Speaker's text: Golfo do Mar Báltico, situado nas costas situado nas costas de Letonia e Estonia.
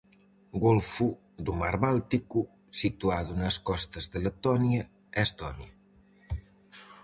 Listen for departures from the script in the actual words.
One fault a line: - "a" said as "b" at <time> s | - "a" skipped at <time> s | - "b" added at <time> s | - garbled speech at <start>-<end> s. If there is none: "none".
- "situado nas costas" skipped at 4.0 s